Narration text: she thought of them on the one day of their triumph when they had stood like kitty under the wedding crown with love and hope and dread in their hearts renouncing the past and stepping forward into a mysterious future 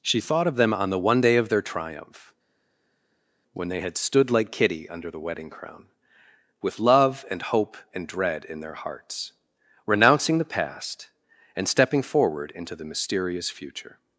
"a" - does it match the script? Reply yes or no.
no